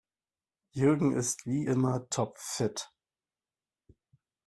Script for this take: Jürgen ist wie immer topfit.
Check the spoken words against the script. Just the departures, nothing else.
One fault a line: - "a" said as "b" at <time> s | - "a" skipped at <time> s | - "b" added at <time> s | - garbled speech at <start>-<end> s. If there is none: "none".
none